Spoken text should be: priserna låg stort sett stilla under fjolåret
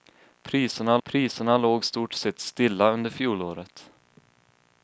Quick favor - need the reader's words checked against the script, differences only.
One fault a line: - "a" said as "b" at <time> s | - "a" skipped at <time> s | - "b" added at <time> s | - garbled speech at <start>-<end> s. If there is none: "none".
- "priserna" added at 1.0 s